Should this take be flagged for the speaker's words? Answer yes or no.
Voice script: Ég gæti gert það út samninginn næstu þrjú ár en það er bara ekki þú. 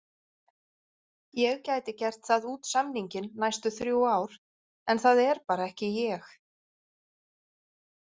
yes